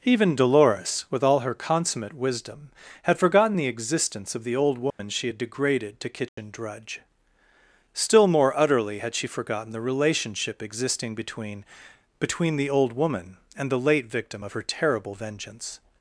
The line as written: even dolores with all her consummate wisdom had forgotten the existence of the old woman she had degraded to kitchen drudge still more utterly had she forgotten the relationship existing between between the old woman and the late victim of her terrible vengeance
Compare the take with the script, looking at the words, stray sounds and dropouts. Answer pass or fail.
fail